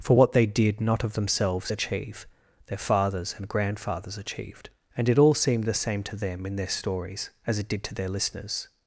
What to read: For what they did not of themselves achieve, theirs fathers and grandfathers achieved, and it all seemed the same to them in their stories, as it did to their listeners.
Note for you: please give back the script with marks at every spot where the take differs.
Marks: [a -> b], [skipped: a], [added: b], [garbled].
For what they did not of themselves achieve, [theirs -> their] fathers and grandfathers achieved, and it all seemed the same to them in their stories, as it did to their listeners.